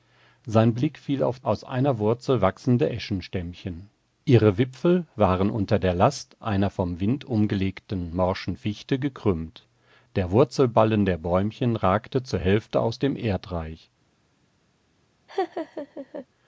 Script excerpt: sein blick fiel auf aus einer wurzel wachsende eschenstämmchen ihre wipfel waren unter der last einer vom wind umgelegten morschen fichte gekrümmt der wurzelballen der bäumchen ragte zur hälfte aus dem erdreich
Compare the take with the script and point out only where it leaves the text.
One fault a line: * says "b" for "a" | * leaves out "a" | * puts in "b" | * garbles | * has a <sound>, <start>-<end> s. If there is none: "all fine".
* has a laugh, 15.3-16.3 s